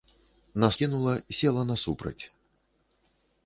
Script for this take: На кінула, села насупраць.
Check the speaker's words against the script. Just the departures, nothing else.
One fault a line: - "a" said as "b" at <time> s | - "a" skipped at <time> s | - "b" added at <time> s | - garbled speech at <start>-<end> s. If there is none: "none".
none